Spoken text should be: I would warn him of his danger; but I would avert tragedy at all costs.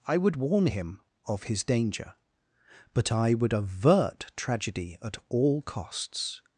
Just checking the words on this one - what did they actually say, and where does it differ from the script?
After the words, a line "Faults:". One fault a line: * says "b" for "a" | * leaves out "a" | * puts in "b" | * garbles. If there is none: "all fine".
I would warn him of his danger; but I would avert tragedy at all costs.
Faults:
all fine